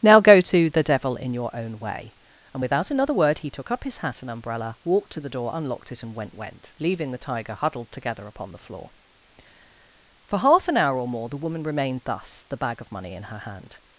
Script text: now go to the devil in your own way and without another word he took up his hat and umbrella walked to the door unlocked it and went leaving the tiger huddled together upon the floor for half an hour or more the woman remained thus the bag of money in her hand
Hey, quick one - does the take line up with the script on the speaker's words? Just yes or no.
no